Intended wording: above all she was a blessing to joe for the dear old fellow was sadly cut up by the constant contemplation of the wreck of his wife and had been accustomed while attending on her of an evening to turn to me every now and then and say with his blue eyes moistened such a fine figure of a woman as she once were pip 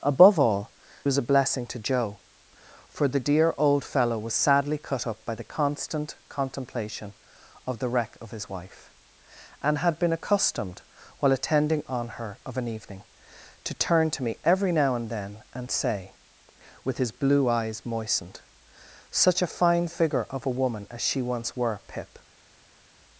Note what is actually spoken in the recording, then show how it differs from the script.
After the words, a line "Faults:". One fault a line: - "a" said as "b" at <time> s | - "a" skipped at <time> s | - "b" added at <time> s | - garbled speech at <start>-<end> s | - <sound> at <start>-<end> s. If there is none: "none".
above all was a blessing to joe for the dear old fellow was sadly cut up by the constant contemplation of the wreck of his wife and had been accustomed while attending on her of an evening to turn to me every now and then and say with his blue eyes moistened such a fine figure of a woman as she once were pip
Faults:
- "she" skipped at 0.7 s